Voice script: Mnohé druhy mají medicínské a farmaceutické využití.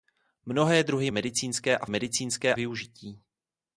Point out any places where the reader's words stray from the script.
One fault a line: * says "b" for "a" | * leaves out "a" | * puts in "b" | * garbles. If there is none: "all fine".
* leaves out "mají"
* says "medicínské" for "farmaceutické"